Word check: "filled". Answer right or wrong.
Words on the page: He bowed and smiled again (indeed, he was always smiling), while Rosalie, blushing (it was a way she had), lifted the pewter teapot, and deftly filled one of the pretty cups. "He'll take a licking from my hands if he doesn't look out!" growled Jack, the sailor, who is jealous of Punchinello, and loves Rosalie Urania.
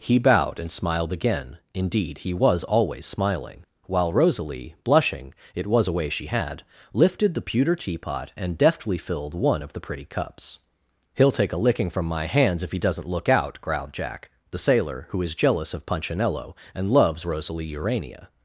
right